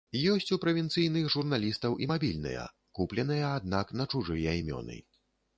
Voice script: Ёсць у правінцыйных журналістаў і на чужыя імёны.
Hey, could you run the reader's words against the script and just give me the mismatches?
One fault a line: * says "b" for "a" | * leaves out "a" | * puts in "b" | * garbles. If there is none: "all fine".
* puts in "мабільныя купленыя аднак"